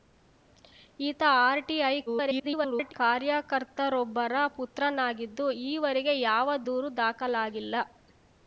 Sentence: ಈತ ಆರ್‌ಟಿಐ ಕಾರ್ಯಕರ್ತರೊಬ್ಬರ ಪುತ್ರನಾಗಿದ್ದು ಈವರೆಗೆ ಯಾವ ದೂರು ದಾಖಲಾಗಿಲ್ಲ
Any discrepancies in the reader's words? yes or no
yes